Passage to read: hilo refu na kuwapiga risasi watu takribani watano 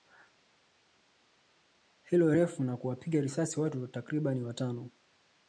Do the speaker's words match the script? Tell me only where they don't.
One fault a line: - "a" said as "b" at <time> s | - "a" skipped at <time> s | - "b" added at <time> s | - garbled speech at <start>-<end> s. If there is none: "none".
none